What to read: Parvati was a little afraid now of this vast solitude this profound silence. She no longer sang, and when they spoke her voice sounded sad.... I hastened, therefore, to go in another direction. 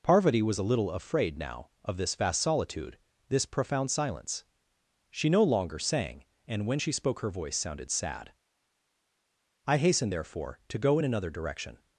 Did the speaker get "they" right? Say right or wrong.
wrong